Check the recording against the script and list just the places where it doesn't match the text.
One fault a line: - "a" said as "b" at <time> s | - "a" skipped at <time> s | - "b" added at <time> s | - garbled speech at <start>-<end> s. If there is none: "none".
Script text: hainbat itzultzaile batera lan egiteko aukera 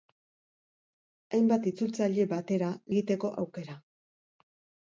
- "lan" skipped at 2.7 s